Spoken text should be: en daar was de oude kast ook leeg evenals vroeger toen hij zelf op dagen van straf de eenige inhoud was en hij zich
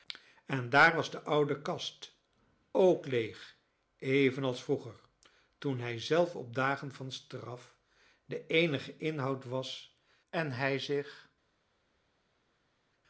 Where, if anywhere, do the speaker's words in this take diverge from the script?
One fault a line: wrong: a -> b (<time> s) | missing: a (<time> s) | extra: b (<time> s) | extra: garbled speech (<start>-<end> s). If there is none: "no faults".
no faults